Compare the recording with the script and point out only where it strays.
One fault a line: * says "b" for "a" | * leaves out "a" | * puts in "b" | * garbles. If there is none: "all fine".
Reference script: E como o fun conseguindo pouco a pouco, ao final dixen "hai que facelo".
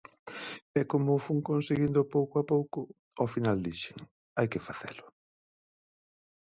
all fine